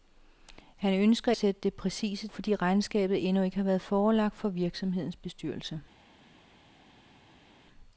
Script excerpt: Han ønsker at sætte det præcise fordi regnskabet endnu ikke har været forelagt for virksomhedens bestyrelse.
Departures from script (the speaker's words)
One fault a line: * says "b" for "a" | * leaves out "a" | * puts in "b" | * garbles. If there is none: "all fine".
all fine